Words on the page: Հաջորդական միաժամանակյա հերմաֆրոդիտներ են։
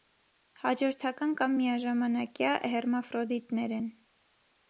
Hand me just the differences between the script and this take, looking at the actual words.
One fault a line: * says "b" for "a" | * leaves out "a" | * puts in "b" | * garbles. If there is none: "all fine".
* puts in "կամ"